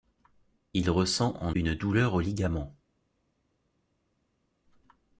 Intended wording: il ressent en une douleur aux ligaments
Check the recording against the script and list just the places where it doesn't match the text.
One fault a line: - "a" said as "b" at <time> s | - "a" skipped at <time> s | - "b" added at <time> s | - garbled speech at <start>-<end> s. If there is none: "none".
none